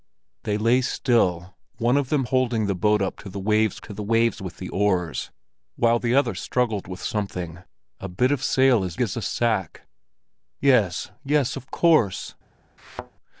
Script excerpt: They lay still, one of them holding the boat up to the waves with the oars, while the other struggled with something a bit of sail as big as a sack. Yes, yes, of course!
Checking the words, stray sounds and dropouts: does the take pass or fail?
fail